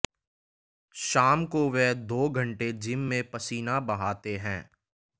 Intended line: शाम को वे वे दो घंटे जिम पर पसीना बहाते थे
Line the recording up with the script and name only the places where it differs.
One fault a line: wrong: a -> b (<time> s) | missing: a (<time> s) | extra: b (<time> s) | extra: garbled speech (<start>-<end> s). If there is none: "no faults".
missing: वे (1.9 s)
wrong: पर -> में (3.1 s)
wrong: थे -> हैं (4.4 s)